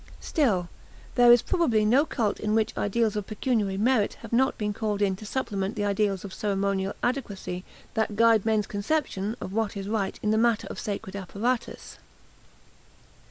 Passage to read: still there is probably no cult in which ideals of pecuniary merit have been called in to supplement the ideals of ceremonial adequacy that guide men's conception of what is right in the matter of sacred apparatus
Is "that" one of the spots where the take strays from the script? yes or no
no